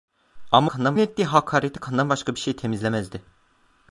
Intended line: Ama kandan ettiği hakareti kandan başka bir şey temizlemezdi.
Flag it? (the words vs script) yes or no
no